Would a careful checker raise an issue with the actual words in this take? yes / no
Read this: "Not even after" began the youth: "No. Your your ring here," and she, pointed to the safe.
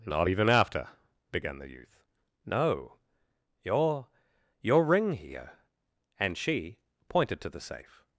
no